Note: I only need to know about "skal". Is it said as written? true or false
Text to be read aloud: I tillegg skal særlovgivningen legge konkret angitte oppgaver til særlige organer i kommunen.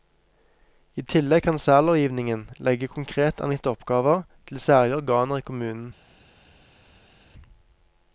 false